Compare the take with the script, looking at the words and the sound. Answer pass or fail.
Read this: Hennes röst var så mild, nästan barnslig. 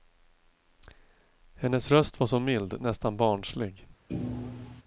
fail